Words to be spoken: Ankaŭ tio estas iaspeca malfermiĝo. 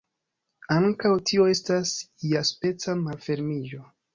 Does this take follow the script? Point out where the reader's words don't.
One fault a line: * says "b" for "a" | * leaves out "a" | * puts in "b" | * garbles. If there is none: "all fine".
all fine